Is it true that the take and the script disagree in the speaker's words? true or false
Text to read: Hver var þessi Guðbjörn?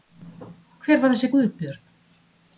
false